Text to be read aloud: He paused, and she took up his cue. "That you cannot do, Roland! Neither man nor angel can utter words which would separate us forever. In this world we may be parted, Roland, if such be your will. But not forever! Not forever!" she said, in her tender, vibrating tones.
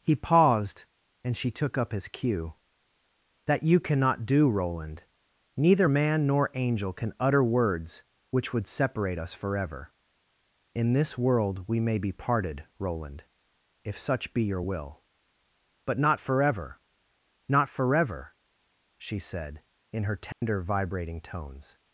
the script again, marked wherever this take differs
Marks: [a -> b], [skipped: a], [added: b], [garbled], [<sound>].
He paused, and she took up his cue. "That you cannot do, Roland! Neither man nor angel can utter words which would separate us forever. In this world we may be parted, Roland, if such be your will. But not forever! Not forever!" she said, in her tender, [dropout] vibrating tones.